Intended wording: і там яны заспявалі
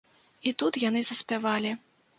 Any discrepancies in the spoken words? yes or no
yes